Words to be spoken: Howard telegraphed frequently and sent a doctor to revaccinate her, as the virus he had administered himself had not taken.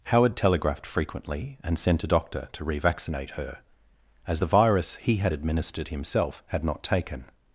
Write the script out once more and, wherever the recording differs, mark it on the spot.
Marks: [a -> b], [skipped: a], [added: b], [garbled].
Howard telegraphed frequently and sent a doctor to revaccinate her, as the virus he had administered himself had not taken.